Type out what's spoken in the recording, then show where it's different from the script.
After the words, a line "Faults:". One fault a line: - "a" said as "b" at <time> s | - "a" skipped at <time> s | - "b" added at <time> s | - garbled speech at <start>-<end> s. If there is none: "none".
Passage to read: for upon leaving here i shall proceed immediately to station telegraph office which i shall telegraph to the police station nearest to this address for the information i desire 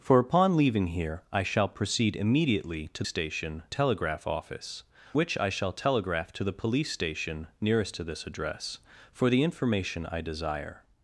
for upon leaving here i shall proceed immediately to station telegraph office which i shall telegraph to the police station nearest to this address for the information i desire
Faults:
none